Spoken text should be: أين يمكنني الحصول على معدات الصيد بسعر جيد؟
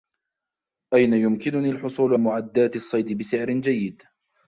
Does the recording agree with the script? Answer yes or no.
no